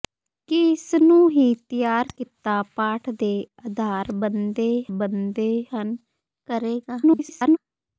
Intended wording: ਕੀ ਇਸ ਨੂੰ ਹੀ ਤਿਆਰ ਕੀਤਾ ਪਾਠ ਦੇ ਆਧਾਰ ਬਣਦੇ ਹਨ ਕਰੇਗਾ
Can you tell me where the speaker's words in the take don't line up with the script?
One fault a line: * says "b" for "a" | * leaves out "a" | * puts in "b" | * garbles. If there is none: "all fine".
* puts in "ਬਣਦੇ"
* garbles